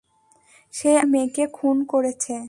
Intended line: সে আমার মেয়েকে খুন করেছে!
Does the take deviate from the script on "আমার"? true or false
true